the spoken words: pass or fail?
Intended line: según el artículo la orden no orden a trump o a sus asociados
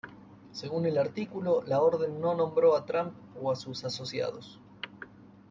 fail